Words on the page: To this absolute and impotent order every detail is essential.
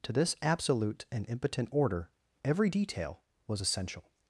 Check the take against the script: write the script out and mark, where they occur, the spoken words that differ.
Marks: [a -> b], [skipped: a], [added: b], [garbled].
To this absolute and impotent order every detail [is -> was] essential.